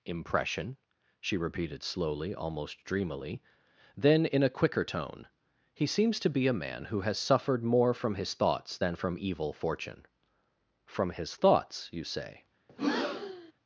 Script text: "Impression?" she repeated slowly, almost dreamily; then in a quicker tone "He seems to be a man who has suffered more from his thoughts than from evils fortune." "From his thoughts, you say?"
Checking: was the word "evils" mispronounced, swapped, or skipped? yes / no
yes